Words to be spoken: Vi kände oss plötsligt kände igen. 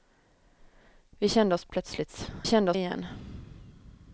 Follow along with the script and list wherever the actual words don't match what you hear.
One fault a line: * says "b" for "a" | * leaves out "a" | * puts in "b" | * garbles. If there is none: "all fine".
all fine